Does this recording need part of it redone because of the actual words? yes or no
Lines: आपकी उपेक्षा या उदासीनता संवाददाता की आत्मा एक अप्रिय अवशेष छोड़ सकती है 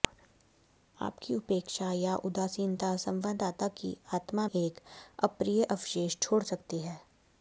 no